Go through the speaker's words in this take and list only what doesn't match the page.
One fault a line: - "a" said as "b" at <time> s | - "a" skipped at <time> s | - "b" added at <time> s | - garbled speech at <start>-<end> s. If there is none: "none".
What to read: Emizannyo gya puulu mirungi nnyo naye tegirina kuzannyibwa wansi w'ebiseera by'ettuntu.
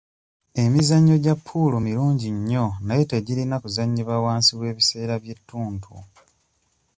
none